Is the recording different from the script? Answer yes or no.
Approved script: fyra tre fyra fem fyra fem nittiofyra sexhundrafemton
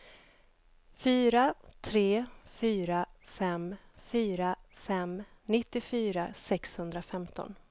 no